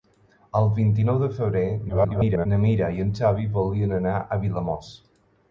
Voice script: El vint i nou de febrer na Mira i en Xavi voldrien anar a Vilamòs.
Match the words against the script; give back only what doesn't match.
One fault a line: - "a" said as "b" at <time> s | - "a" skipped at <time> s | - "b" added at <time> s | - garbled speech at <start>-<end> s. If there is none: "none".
- garbled speech at 1.9-2.5 s